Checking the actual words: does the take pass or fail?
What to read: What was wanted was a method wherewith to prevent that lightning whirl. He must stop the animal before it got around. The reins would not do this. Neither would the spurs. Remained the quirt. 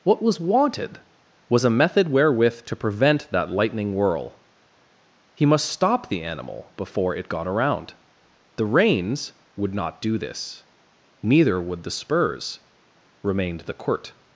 pass